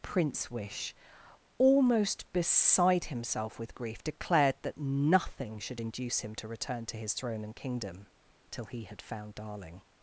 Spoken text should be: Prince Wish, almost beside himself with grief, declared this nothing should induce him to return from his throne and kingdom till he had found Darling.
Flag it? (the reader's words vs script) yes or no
yes